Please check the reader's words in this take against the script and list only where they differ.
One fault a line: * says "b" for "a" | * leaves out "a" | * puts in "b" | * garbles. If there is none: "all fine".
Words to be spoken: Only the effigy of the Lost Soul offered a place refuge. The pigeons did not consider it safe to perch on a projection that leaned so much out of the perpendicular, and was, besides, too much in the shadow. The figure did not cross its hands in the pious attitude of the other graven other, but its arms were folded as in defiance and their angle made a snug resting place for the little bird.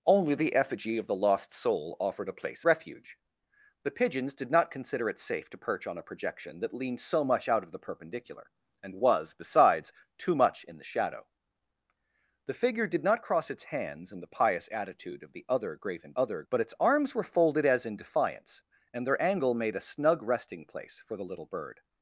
all fine